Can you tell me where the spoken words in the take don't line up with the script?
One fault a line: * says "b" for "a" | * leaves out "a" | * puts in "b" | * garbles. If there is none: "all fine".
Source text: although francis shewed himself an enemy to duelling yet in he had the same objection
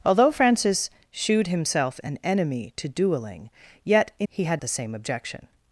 all fine